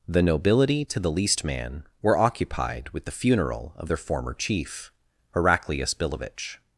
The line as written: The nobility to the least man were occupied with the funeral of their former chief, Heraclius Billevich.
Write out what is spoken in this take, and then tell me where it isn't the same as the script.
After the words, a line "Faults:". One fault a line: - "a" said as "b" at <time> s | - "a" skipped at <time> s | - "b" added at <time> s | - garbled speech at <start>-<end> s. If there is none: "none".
The nobility to the least man were occupied with the funeral of their former chief, Heraclius Billevich.
Faults:
none